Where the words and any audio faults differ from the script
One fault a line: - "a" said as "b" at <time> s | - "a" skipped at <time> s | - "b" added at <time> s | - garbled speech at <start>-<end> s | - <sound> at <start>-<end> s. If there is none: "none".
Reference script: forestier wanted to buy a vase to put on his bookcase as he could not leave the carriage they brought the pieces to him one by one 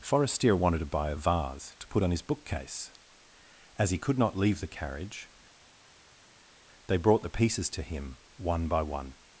none